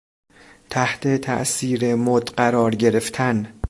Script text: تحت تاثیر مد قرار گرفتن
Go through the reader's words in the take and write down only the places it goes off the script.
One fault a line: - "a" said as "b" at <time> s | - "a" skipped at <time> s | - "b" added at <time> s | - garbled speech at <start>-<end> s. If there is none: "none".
none